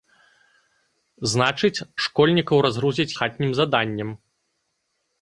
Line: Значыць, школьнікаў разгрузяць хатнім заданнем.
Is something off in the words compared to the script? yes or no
no